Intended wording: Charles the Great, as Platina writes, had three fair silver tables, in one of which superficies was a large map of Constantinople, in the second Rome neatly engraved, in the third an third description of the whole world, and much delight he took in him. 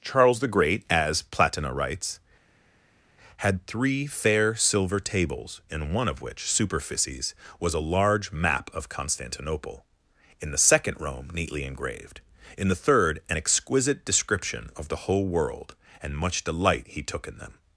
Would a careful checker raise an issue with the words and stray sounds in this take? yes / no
yes